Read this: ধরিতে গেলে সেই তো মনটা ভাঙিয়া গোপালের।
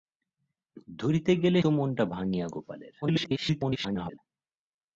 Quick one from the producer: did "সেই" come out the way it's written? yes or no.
no